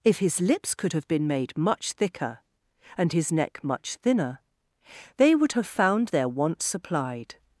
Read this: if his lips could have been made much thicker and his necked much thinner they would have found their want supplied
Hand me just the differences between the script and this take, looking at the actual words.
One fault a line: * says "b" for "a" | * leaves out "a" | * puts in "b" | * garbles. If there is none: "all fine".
* says "neck" for "necked"